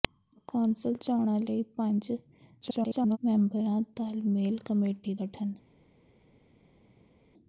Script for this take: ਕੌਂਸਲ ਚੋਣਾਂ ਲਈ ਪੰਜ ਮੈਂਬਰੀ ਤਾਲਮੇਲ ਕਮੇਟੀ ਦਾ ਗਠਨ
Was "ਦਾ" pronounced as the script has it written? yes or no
no